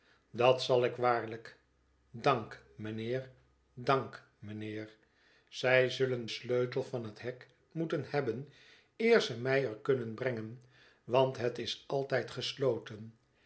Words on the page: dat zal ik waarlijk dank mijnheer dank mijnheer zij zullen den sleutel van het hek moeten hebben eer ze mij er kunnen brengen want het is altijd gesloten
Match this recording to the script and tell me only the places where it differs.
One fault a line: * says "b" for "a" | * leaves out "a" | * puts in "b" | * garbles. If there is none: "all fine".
* leaves out "den"